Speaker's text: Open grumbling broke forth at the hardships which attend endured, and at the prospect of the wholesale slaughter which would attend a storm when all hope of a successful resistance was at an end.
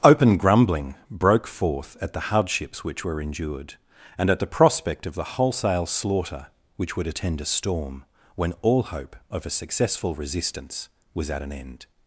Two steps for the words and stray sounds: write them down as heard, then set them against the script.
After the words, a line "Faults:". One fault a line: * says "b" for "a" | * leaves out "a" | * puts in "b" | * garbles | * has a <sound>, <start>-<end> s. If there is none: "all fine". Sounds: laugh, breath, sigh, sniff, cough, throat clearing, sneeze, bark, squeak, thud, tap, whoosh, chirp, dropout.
Open grumbling broke forth at the hardships which were endured, and at the prospect of the wholesale slaughter which would attend a storm when all hope of a successful resistance was at an end.
Faults:
* says "were" for "attend"